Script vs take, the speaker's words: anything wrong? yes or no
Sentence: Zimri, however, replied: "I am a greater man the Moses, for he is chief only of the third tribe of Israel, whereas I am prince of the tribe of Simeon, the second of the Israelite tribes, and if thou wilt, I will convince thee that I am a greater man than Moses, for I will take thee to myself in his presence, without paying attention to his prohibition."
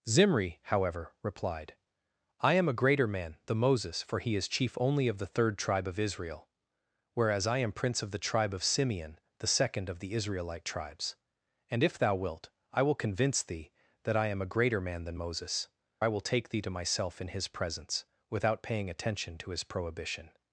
yes